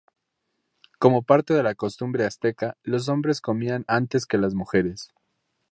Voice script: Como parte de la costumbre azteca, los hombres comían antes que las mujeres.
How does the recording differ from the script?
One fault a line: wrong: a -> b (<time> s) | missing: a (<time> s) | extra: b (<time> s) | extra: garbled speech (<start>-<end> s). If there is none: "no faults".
no faults